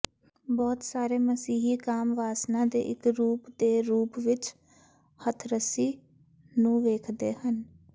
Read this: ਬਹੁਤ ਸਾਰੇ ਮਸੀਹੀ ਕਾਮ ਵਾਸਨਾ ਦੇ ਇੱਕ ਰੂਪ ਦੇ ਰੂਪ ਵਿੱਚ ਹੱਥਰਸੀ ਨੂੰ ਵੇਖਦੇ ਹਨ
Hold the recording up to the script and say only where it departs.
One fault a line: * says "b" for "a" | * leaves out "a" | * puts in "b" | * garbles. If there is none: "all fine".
all fine